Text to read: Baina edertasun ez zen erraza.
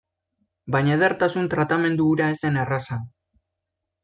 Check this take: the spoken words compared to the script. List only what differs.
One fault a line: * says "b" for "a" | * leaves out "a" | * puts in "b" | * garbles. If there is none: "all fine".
* puts in "tratamendu hura"